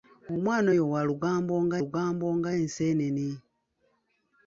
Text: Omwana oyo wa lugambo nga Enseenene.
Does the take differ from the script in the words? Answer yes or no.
yes